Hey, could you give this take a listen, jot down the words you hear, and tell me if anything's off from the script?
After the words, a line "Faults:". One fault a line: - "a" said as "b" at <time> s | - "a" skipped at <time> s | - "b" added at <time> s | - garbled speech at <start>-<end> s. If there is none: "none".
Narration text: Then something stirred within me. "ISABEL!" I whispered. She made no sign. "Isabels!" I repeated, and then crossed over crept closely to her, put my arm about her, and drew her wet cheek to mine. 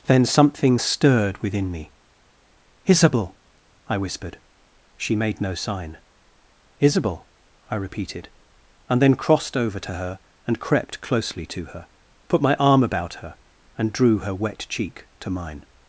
Then something stirred within me. "ISABEL!" I whispered. She made no sign. "Isabel!" I repeated, and then crossed over to her and crept closely to her, put my arm about her, and drew her wet cheek to mine.
Faults:
- "Isabels" said as "Isabel" at 6.8 s
- "to her and" added at 9.8 s